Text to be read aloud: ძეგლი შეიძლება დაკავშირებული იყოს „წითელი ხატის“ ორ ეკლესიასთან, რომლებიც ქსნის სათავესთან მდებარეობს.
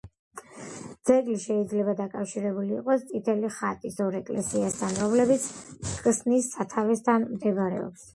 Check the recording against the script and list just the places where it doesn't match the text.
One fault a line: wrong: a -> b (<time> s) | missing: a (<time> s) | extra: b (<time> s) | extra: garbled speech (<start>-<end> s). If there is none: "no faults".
no faults